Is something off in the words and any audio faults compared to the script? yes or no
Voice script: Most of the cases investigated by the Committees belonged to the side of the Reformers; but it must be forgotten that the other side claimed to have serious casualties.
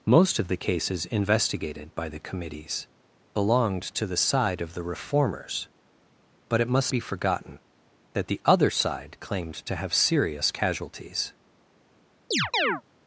yes